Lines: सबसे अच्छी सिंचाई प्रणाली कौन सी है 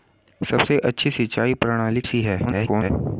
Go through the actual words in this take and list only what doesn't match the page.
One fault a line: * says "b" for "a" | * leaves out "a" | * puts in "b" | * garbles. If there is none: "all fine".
* leaves out "कौन"
* garbles